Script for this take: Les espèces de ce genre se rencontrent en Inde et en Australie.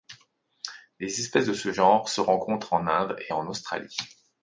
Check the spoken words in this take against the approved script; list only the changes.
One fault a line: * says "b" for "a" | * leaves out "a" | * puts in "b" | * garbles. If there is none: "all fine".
all fine